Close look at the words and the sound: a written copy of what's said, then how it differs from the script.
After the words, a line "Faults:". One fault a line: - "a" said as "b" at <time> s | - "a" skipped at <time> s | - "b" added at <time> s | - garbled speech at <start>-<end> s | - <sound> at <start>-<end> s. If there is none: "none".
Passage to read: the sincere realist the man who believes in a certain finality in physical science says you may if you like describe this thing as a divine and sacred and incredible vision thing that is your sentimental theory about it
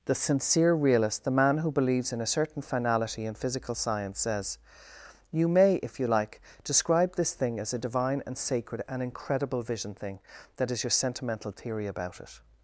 the sincere realist the man who believes in a certain finality in physical science says you may if you like describe this thing as a divine and sacred and incredible vision thing that is your sentimental theory about it
Faults:
none